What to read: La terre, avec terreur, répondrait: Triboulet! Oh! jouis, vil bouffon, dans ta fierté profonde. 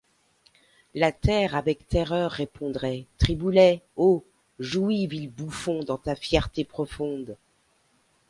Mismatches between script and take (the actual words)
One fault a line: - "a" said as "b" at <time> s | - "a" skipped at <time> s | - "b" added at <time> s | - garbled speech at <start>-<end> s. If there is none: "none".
none